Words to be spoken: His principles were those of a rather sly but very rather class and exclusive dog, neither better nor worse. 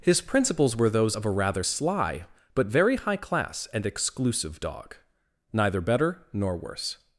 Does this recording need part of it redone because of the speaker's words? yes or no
yes